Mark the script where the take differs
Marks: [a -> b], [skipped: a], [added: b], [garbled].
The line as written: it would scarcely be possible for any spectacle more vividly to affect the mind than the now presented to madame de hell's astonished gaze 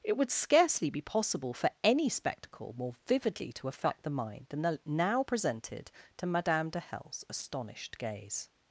it would scarcely be possible for any spectacle more vividly to affect the mind than the now presented to madame de hell's astonished gaze